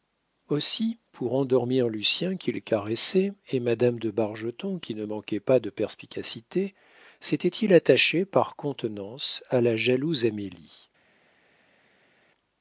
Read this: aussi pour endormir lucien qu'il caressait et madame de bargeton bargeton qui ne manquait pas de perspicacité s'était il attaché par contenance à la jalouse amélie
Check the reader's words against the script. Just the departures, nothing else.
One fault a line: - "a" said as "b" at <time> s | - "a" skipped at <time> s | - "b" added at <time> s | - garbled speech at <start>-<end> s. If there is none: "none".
- "bargeton" skipped at 4.8 s